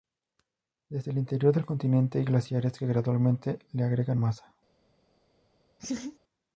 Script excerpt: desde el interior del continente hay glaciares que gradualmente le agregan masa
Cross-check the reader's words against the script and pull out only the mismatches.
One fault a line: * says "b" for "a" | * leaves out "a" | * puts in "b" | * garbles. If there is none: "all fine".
all fine